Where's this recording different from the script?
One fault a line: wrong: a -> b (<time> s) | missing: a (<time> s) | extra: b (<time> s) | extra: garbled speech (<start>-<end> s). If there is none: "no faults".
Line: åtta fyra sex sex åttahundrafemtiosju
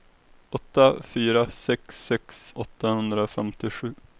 no faults